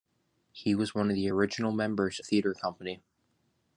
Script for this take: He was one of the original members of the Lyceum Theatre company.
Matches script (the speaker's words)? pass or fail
fail